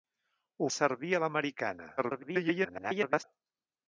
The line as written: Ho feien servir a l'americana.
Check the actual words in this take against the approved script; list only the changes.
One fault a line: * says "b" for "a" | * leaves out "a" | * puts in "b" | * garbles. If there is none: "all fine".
* leaves out "feien"
* garbles